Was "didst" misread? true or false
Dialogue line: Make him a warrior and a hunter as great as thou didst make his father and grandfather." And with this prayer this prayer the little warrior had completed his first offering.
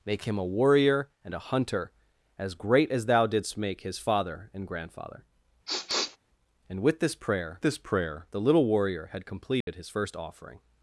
false